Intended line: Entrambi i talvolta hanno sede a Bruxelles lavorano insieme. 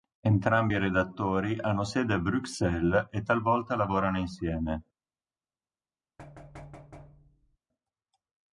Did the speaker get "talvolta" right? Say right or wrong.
wrong